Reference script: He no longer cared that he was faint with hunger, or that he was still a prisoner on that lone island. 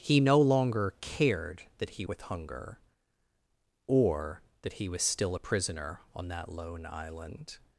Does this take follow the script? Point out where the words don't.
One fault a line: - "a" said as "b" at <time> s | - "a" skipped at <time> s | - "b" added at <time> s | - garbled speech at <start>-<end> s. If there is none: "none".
- "was faint" skipped at 2.1 s